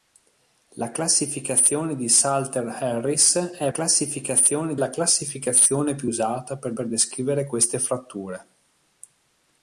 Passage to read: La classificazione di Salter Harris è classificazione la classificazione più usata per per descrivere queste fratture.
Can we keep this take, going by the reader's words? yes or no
yes